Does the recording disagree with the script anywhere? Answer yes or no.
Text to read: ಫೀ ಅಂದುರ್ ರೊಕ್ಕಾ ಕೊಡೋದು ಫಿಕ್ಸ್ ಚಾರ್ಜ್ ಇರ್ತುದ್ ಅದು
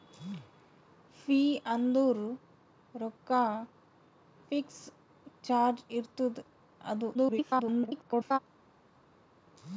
yes